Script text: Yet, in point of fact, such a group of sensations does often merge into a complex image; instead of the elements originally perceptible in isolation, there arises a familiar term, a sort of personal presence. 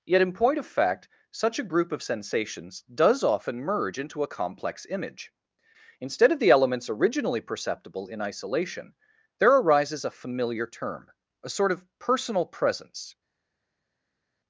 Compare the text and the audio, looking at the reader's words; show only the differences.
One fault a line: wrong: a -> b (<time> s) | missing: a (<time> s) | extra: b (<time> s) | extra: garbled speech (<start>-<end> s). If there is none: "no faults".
no faults